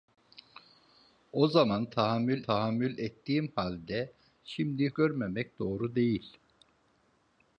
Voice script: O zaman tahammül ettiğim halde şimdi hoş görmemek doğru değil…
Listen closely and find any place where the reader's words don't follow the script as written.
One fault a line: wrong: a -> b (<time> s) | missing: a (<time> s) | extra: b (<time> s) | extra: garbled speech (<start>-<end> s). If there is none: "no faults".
extra: tahammül (2.4 s)
missing: hoş (4.9 s)